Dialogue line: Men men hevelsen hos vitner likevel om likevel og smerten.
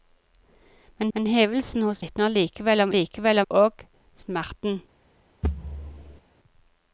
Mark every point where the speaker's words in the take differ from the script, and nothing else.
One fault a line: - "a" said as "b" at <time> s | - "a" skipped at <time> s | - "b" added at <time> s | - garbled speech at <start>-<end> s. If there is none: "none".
none